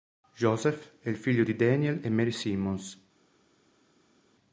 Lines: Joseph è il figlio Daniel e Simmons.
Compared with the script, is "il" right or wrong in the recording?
right